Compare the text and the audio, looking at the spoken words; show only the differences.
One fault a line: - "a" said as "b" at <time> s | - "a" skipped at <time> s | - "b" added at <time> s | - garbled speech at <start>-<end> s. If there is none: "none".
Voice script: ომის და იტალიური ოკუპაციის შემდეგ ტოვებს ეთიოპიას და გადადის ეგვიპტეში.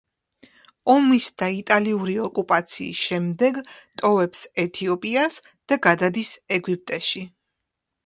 none